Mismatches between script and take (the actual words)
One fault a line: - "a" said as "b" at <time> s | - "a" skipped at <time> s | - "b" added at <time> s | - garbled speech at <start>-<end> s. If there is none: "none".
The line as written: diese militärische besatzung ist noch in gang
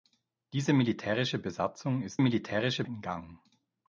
- "noch" said as "militärische" at 2.2 s